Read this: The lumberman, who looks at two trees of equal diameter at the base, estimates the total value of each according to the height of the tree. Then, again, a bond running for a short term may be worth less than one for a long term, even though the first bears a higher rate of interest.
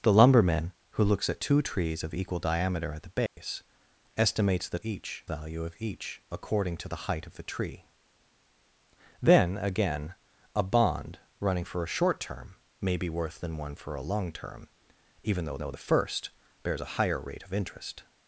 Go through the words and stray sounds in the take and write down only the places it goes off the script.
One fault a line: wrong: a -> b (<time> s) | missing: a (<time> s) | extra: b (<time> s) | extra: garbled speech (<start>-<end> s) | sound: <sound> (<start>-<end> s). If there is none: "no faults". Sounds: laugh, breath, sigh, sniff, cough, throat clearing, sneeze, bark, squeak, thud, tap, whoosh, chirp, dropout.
sound: dropout (3.3-3.4 s)
wrong: total -> each (4.8 s)
missing: less (13.4 s)
extra: though (15.6 s)